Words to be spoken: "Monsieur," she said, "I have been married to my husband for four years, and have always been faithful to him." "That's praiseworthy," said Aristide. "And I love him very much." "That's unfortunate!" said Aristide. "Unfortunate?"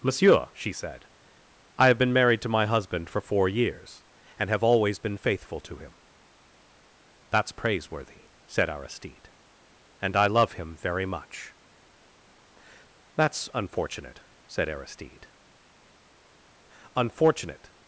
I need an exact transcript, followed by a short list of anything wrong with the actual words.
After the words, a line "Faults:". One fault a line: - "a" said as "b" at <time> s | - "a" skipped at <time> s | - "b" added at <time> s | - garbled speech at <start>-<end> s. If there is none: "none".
"Monsieur," she said, "I have been married to my husband for four years, and have always been faithful to him." "That's praiseworthy," said Aristide. "And I love him very much." "That's unfortunate!" said Aristide. "Unfortunate?"
Faults:
none